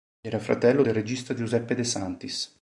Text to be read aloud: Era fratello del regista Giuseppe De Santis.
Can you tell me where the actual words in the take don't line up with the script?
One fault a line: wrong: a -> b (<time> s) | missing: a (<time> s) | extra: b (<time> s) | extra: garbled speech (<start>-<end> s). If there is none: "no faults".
no faults